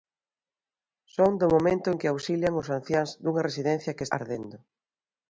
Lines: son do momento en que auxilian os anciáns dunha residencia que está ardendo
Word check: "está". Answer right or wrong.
wrong